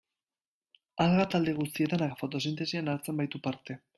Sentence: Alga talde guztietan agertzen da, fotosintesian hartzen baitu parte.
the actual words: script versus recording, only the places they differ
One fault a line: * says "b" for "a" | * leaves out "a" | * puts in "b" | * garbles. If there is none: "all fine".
* leaves out "agertzen"